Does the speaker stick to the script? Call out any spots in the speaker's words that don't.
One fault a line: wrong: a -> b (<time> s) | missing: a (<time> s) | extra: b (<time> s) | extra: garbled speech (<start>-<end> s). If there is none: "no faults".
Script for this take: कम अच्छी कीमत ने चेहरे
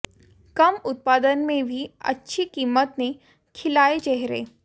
extra: उत्पादन में भी (0.8 s)
extra: खिलाए (3.5 s)